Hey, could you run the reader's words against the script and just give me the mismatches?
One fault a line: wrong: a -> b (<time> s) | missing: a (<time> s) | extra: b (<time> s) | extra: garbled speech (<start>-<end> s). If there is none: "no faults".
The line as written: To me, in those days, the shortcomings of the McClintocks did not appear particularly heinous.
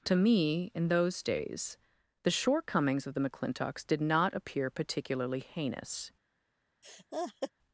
no faults